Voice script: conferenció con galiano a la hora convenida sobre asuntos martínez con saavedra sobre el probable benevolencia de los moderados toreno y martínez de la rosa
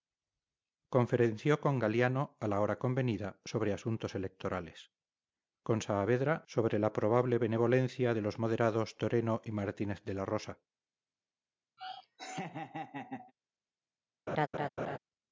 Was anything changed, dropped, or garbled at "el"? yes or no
yes